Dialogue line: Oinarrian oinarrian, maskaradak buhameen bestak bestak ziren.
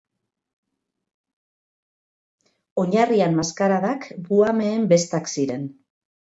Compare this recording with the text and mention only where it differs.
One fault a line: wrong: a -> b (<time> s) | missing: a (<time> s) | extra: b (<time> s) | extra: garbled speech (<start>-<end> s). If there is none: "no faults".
missing: oinarrian (3.4 s)
missing: bestak (5.3 s)